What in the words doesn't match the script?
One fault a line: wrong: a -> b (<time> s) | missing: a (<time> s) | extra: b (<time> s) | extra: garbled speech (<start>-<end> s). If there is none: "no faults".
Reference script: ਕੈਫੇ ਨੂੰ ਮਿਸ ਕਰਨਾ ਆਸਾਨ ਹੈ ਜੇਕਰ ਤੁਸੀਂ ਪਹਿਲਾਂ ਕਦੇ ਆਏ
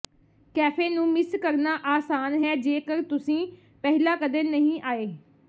extra: ਨਹੀਂ (4.4 s)